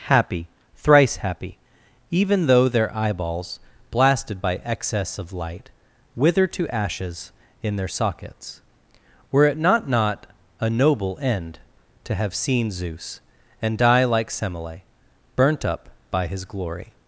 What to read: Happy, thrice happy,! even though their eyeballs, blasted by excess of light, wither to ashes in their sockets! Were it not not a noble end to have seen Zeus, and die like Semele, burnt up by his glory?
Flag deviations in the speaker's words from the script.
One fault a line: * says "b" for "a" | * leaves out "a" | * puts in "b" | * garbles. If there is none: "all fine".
all fine